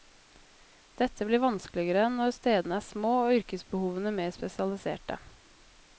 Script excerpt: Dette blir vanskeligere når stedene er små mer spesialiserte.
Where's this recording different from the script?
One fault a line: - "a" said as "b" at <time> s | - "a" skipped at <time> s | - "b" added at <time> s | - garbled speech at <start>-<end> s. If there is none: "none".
- "og yrkesbehovene" added at 3.3 s